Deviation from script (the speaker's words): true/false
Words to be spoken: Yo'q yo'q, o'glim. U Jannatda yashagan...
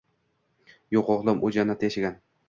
true